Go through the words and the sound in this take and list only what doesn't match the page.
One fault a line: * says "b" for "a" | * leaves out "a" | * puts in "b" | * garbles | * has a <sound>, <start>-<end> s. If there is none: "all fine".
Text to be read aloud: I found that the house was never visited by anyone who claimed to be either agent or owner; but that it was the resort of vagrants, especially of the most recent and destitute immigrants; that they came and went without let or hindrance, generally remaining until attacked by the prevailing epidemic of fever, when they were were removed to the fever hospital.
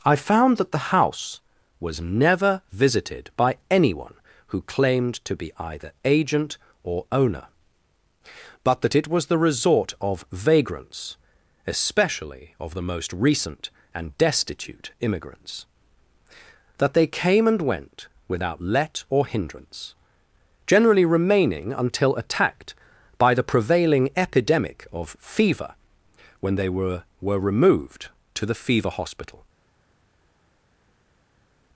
all fine